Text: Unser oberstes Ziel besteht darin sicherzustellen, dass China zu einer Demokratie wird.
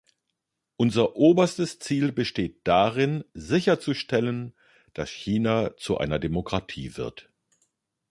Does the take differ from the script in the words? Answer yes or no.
no